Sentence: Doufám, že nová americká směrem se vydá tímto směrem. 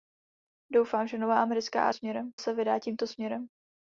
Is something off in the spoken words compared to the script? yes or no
no